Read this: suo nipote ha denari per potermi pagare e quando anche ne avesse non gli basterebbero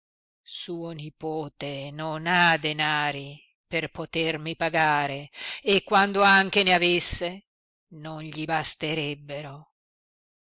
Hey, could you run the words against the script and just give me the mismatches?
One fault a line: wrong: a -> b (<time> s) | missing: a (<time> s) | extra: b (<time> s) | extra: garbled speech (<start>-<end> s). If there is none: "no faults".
extra: non (1.9 s)